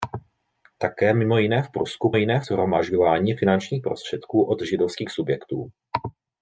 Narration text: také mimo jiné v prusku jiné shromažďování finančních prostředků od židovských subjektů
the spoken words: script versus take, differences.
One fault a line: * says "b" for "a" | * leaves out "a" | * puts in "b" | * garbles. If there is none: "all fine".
all fine